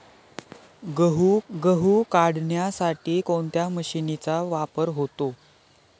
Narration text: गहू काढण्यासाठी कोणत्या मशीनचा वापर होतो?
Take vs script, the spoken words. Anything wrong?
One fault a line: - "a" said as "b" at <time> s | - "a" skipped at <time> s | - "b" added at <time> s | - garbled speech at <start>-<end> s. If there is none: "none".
- "गहू" added at 1.5 s